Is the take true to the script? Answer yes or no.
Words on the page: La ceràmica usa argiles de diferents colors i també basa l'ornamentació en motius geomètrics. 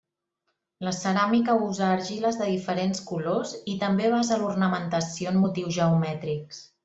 yes